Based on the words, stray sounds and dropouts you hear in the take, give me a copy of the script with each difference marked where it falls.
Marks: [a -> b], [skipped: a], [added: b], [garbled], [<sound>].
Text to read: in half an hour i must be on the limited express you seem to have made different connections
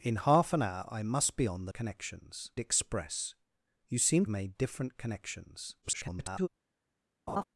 in half an hour i must be on the [limited -> connections] express you seem [skipped: to have] made different connections [garbled] [laugh]